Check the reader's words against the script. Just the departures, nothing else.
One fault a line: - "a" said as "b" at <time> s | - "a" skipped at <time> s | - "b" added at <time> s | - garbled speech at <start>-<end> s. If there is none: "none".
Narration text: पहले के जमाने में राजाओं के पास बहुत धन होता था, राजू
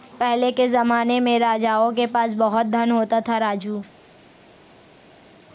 none